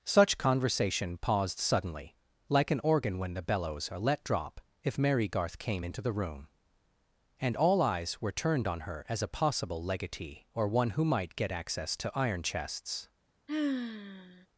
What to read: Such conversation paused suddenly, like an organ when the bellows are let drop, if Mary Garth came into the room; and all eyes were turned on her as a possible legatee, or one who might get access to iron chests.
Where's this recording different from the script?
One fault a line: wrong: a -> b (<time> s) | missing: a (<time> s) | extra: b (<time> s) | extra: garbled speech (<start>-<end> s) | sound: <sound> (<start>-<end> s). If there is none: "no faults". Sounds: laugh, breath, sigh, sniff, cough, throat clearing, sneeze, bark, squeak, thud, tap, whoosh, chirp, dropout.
sound: sigh (13.5-14.5 s)